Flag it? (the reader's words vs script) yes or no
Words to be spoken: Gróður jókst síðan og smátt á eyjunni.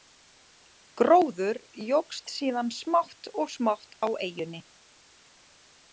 yes